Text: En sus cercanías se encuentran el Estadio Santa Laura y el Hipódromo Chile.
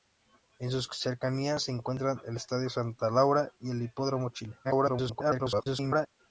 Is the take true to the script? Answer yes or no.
no